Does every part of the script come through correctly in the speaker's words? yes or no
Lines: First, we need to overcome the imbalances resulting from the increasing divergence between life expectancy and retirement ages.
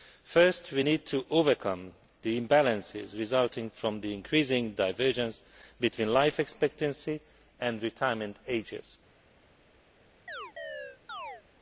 yes